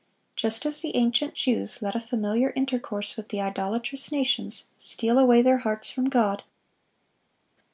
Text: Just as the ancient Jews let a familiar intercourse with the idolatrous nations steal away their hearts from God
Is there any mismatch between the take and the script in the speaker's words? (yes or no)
no